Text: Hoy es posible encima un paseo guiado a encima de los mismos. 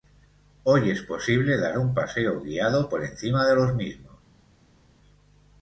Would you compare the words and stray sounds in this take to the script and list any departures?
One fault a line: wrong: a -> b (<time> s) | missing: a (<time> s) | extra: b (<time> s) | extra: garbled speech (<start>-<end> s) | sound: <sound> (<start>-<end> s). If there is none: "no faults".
wrong: encima -> dar (1.6 s)
wrong: a -> por (2.9 s)